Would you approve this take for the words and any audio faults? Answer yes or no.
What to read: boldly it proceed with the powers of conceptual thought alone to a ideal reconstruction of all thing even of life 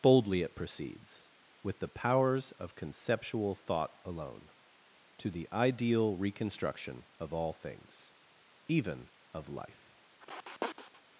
no